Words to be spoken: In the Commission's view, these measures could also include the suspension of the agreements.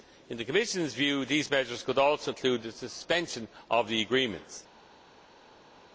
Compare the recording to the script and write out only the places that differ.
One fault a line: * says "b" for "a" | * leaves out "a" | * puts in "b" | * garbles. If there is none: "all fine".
all fine